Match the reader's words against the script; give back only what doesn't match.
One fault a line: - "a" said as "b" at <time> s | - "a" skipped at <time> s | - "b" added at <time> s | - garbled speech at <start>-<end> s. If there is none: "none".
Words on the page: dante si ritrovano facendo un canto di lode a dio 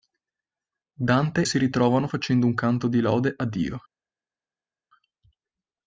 none